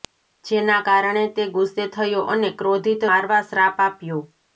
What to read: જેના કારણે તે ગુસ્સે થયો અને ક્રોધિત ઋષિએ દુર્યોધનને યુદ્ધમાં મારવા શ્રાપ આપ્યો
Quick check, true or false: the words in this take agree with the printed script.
false